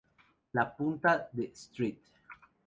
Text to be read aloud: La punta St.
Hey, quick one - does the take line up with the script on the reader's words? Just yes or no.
no